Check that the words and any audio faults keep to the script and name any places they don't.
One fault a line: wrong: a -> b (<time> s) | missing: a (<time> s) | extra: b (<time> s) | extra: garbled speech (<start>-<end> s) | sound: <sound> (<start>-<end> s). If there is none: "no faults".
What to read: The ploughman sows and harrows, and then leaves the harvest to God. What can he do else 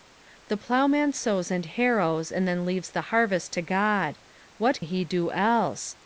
missing: can (4.8 s)